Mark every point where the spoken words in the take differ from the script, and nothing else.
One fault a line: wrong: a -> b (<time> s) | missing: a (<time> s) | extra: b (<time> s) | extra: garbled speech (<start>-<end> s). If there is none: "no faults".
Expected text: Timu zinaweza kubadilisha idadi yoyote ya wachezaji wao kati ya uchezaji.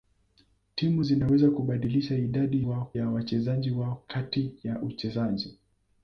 wrong: yoyote -> wao (2.6 s)